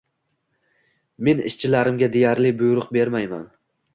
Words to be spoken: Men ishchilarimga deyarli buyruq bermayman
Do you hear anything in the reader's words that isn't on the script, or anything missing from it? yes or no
no